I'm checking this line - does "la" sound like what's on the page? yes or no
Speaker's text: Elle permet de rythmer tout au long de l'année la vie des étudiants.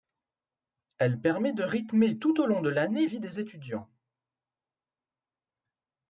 no